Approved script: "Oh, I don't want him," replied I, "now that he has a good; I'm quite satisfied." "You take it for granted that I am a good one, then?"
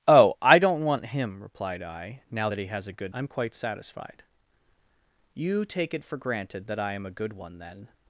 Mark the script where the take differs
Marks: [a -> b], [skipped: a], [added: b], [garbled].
"Oh, I don't want him," replied I, "now that he has a good; I'm quite satisfied." "You take it for granted that I am a good one, then?"